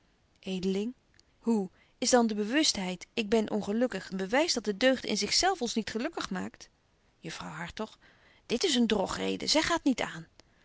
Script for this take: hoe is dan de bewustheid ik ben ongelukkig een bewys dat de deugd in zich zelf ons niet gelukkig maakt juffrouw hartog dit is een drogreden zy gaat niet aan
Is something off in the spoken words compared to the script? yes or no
no